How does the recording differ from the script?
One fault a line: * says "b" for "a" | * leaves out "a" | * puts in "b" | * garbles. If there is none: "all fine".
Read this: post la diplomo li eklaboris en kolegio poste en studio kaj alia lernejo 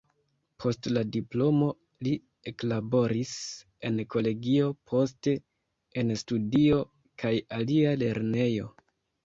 all fine